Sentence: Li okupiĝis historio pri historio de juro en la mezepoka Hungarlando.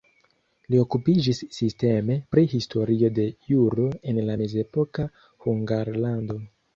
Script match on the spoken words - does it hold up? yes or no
no